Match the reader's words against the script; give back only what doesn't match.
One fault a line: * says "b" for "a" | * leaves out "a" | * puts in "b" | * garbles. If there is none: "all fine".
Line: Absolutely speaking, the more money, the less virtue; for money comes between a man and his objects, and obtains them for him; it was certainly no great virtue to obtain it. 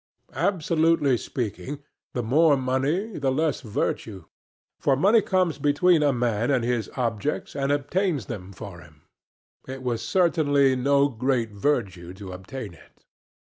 all fine